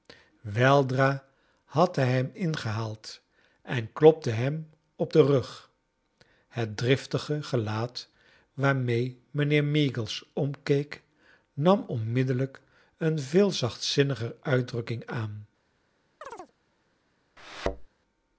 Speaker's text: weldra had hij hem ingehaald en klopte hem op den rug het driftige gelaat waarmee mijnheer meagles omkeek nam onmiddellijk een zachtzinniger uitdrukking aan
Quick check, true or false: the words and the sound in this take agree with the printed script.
false